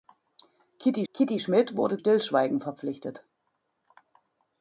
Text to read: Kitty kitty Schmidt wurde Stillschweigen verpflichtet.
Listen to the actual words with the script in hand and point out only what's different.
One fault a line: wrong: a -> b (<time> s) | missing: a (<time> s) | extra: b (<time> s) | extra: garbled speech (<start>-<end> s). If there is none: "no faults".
no faults